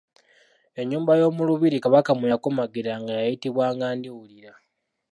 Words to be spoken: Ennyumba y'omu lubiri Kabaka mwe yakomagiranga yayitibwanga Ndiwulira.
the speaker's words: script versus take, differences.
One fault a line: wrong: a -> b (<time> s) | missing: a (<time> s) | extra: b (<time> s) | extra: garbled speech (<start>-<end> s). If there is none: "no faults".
no faults